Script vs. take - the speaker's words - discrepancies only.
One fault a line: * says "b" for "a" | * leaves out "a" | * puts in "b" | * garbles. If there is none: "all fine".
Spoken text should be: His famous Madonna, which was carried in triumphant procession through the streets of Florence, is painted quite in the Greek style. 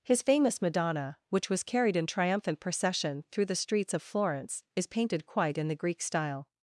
all fine